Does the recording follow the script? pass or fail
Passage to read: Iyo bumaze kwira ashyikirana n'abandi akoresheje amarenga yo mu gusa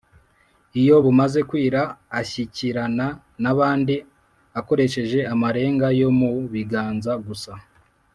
fail